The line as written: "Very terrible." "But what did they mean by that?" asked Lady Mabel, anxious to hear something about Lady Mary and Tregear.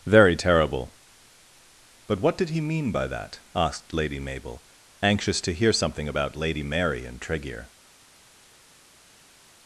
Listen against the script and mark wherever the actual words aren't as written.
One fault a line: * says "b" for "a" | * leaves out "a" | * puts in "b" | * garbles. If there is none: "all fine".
* says "he" for "they"